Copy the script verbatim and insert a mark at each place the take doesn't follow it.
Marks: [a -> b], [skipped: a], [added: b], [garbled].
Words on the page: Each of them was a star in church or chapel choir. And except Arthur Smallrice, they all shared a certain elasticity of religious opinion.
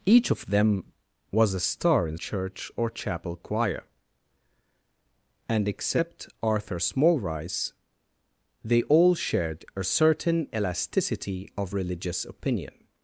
Each of them was a star in church or chapel choir. And except Arthur Smallrice, they all shared a certain elasticity of religious opinion.